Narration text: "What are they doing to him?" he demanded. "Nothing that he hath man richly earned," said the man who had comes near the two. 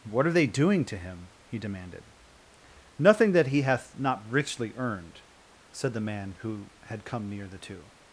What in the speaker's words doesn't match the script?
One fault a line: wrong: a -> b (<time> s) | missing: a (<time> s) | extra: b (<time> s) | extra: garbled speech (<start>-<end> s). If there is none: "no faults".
wrong: man -> not (4.0 s)
wrong: comes -> come (7.0 s)